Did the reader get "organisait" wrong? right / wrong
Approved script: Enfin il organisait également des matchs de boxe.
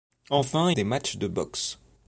wrong